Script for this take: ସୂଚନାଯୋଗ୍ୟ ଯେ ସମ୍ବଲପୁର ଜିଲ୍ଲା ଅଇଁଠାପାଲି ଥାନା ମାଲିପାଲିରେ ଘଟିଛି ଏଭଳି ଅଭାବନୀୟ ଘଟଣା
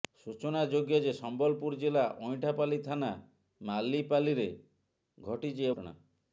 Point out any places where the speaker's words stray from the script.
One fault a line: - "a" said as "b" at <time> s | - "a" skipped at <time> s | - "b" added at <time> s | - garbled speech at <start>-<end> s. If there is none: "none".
- "ଏଭଳି ଅଭାବନୀୟ" skipped at 5.7 s